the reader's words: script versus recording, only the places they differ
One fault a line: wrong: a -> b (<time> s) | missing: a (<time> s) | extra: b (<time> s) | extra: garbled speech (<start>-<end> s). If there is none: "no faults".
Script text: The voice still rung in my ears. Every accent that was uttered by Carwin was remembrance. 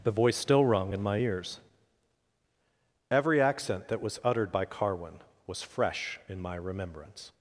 extra: fresh in my (5.6 s)